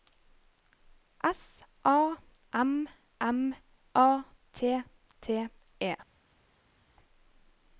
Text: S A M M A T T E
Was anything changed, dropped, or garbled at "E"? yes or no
no